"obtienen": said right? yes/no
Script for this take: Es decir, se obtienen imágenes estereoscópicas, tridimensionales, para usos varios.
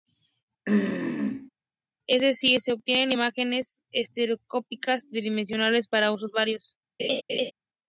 yes